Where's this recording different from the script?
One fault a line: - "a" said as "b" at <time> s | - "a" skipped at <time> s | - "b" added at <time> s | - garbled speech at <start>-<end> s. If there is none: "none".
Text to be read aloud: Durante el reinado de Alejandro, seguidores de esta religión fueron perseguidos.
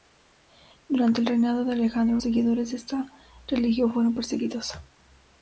none